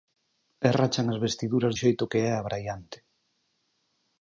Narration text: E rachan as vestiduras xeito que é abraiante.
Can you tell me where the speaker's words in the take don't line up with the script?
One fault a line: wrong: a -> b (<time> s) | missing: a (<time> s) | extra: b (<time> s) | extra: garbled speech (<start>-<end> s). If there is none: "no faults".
no faults